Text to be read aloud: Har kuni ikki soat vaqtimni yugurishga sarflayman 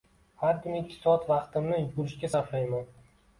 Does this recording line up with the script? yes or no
yes